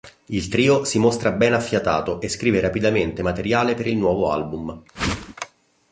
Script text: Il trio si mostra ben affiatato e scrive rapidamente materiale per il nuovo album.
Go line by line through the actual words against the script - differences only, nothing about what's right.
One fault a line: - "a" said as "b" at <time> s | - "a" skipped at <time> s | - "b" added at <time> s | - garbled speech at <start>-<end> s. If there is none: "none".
none